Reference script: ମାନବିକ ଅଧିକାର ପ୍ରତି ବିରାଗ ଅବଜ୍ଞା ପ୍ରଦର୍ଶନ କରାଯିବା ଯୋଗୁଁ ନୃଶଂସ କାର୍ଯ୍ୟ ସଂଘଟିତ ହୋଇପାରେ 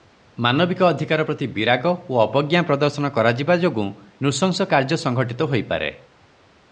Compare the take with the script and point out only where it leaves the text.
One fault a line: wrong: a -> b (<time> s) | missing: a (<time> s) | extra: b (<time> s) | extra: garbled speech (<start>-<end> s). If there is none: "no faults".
extra: ଓ (2.1 s)